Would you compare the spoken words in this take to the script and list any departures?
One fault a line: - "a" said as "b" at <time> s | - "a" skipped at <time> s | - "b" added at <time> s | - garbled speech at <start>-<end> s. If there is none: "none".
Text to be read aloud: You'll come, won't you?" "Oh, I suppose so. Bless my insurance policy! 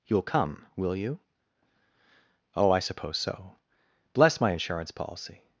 - "won't" said as "will" at 0.8 s